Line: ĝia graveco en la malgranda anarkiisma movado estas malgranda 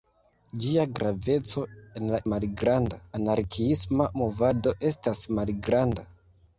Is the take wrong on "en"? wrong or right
right